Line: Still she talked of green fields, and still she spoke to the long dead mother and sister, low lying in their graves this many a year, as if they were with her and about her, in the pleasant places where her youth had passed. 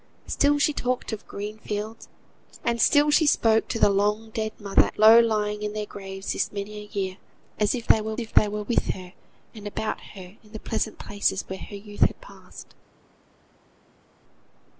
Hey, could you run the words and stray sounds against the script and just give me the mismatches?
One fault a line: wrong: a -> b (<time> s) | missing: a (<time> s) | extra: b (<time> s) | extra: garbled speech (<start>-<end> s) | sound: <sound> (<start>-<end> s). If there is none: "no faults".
missing: and sister (4.9 s)
extra: if they were (8.2 s)